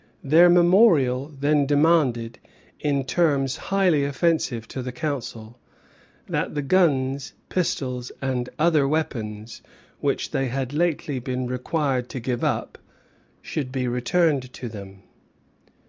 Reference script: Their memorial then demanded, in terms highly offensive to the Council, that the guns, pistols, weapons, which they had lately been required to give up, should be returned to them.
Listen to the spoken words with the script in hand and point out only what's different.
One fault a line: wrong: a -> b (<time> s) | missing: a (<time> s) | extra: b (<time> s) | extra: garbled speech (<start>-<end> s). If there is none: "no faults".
extra: and other (8.2 s)